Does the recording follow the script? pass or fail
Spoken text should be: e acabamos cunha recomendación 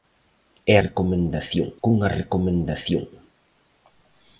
fail